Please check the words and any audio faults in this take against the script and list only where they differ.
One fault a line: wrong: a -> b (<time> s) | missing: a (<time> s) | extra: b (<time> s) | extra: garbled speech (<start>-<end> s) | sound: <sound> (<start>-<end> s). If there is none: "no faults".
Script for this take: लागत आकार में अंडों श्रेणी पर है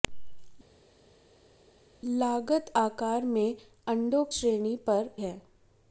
no faults